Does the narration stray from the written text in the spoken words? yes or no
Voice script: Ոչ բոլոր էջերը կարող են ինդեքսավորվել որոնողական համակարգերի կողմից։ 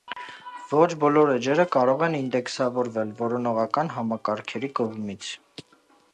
no